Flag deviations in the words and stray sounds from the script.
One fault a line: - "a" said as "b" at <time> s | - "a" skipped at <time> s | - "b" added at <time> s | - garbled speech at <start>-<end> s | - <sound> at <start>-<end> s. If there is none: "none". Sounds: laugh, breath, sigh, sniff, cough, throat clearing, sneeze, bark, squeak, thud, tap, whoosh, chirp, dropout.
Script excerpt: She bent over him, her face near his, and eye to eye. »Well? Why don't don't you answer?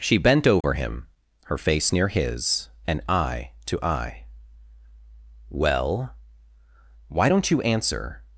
- dropout at 0.6-0.6 s
- "don't" skipped at 7.5 s